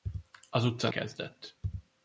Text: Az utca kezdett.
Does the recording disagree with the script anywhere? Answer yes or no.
no